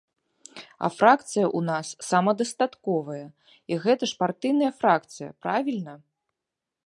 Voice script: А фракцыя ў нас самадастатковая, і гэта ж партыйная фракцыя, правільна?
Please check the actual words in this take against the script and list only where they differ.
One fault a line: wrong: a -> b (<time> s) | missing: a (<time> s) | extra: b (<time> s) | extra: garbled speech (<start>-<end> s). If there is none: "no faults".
no faults